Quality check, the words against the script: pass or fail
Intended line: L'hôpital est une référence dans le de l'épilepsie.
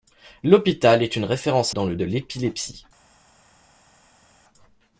pass